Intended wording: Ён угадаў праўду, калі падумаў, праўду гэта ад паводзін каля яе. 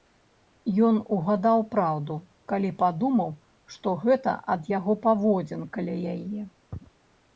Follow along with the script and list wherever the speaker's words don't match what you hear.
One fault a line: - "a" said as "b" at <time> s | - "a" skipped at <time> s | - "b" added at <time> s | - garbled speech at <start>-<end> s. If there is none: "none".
- "праўду" said as "што" at 3.8 s
- "яго" added at 4.8 s